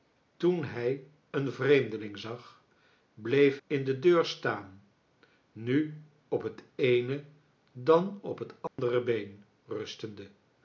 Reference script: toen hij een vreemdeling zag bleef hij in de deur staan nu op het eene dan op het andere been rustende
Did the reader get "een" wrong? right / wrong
right